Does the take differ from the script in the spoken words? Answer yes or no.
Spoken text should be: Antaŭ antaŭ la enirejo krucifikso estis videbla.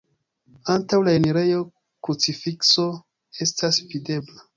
yes